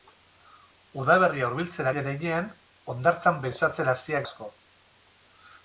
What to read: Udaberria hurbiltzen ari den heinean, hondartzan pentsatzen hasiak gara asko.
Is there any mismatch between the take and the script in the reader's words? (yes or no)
yes